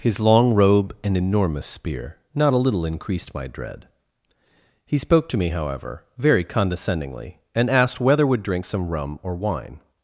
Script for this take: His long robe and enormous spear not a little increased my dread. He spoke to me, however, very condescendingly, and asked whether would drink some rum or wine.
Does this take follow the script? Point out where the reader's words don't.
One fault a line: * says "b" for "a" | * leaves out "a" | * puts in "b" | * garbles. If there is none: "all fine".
all fine